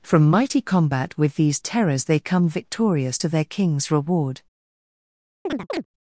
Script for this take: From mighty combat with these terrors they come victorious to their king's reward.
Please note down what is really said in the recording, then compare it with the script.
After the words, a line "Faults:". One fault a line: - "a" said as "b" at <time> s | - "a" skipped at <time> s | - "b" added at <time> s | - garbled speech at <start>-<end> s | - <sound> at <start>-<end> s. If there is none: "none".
From mighty combat with these terrors they come victorious to their king's reward.
Faults:
- chirp at 5.5-5.9 s